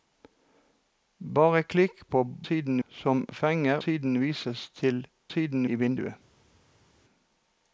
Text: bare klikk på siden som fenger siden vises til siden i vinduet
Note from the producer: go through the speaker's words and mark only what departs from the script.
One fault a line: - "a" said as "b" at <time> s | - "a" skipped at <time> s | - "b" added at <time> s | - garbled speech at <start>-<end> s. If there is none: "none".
none